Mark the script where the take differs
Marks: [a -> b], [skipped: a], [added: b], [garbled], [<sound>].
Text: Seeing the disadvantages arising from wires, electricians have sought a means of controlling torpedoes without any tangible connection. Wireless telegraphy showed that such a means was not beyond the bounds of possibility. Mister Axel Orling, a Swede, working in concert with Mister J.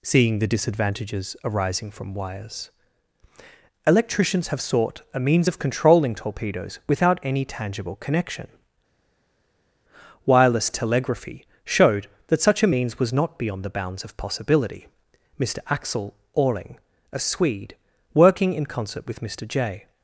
Seeing the disadvantages arising from wires, electricians have sought a means of controlling torpedoes without any tangible connection. Wireless telegraphy showed that such a means was not beyond the bounds of possibility. Mister Axel Orling, a Swede, working in concert with Mister J.